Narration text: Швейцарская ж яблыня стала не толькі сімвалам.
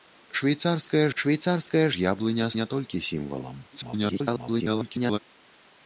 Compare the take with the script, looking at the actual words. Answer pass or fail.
fail